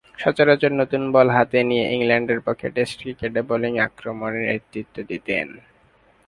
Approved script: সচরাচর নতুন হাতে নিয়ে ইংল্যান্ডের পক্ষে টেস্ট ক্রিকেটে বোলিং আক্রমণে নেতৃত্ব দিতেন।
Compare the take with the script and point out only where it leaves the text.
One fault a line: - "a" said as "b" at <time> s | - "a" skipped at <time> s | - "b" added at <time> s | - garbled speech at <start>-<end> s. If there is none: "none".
- "বল" added at 1.1 s